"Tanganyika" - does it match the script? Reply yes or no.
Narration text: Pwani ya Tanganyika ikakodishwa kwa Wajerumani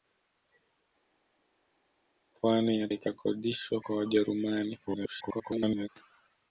no